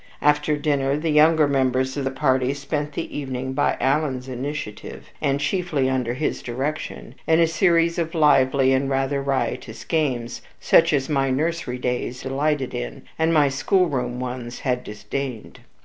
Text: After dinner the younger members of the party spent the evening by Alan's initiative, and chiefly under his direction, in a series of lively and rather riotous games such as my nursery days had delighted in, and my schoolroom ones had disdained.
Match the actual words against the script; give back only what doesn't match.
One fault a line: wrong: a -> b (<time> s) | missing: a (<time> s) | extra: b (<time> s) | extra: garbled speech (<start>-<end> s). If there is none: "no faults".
missing: had (12.2 s)